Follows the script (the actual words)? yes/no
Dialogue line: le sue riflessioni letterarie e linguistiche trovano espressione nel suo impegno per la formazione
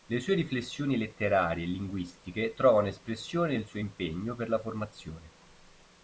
yes